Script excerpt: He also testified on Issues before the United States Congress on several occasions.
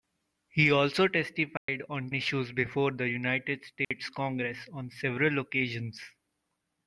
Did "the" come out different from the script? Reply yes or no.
no